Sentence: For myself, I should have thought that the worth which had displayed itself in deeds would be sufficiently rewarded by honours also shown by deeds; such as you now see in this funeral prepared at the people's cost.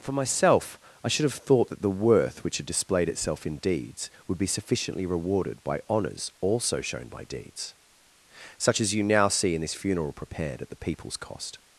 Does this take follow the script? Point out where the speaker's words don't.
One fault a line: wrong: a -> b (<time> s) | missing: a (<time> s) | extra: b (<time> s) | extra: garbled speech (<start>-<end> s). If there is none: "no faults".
no faults